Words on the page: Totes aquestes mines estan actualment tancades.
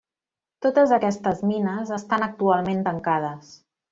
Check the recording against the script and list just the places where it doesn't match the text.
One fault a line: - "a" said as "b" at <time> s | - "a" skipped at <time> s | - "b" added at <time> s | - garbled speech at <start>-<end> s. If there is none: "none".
none